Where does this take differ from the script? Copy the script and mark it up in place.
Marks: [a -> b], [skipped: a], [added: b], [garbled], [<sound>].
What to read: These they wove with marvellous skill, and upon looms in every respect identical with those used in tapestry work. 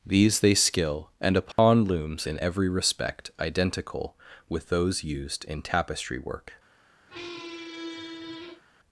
These they [skipped: wove with marvellous] skill, and upon [dropout] looms in every respect identical with those used in tapestry work. [squeak]